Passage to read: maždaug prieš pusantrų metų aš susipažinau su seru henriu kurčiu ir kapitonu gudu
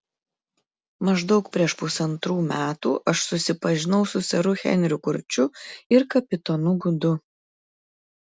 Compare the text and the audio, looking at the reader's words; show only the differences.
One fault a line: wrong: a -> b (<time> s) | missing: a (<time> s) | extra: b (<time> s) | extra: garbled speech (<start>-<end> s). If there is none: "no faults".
no faults